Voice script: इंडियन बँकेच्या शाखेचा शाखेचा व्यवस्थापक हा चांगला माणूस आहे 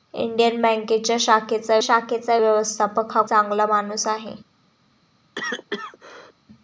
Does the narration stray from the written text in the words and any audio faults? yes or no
yes